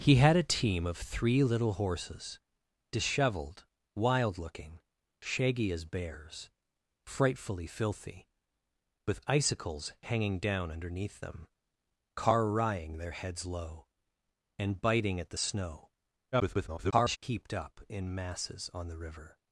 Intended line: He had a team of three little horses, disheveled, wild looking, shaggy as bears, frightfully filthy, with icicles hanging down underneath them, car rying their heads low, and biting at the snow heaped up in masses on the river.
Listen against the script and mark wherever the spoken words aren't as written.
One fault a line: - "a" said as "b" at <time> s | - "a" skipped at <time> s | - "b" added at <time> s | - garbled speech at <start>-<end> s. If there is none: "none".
- garbled speech at 16.3-17.2 s